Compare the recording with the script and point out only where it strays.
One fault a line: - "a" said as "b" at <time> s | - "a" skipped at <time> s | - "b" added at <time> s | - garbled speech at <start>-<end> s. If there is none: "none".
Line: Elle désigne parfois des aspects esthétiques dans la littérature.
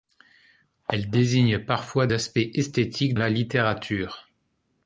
- "des" skipped at 2.1 s
- "dans" skipped at 3.1 s